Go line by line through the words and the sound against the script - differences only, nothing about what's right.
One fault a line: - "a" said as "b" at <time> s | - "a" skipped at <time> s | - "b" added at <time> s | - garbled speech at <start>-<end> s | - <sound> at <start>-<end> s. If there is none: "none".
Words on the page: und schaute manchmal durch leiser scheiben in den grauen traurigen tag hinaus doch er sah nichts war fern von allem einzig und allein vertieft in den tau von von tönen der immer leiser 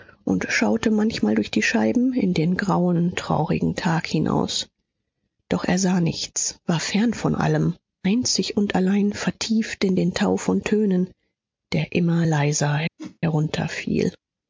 - "leiser" said as "die" at 1.5 s
- "von" skipped at 10.6 s
- whoosh at 13.0-13.2 s